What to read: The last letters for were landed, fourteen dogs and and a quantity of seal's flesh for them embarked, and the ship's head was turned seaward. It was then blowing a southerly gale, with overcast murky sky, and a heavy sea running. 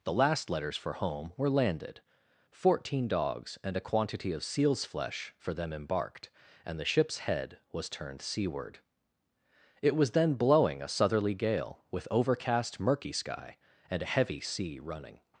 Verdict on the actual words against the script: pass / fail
fail